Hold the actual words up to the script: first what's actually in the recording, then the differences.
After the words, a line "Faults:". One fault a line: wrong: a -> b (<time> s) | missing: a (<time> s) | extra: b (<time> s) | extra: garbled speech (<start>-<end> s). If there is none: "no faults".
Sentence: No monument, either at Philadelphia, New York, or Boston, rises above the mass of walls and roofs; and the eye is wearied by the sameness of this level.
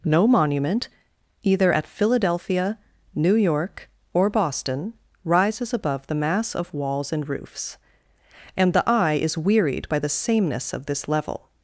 No monument, either at Philadelphia, New York, or Boston, rises above the mass of walls and roofs; and the eye is wearied by the sameness of this level.
Faults:
no faults